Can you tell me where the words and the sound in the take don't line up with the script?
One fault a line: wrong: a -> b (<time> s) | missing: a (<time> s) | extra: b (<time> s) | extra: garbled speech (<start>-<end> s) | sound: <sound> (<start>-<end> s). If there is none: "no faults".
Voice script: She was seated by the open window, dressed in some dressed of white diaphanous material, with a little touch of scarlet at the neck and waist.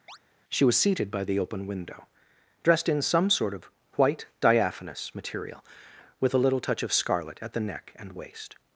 sound: chirp (0.1-0.2 s)
wrong: dressed -> sort (3.3 s)